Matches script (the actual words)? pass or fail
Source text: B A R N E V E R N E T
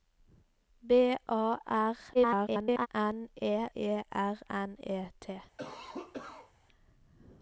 fail